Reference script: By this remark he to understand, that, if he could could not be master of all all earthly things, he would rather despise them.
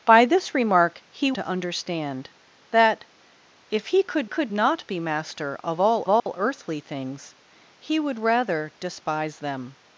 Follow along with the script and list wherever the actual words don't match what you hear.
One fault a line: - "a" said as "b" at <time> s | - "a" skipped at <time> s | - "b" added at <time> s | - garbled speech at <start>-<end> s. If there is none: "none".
none